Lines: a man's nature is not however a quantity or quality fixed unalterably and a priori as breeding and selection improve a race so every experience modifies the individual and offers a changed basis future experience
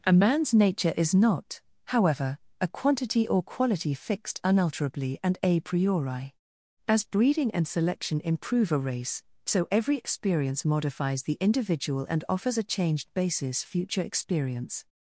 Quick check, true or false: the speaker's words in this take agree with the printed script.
true